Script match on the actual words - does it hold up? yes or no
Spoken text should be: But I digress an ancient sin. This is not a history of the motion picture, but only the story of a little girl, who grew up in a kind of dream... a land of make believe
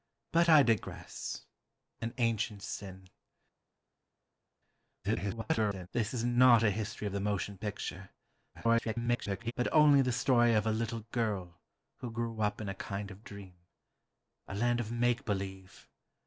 no